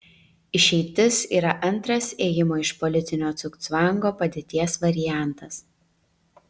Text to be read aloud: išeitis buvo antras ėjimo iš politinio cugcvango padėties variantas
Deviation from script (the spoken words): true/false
true